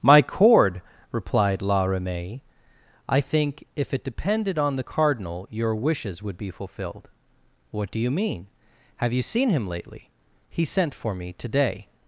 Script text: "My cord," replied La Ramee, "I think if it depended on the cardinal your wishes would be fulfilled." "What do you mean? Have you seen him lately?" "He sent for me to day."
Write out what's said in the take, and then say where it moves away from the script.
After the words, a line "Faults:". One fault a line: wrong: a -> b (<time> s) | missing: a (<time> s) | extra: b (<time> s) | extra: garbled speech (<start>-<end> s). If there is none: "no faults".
"My cord," replied La Ramee, "I think if it depended on the cardinal your wishes would be fulfilled." "What do you mean? Have you seen him lately?" "He sent for me to day."
Faults:
no faults